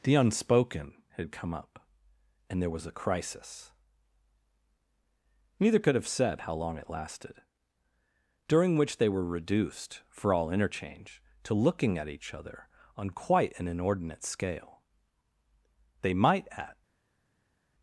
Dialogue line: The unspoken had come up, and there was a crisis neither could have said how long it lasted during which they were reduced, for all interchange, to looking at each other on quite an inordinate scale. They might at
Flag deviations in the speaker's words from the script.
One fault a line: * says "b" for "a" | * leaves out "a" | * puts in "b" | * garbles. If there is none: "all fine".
all fine